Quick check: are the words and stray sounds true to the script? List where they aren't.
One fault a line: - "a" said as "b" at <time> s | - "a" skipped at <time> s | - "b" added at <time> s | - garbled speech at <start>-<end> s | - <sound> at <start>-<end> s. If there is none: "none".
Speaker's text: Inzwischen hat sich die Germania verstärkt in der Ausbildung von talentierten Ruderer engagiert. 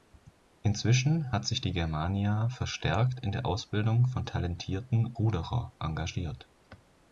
none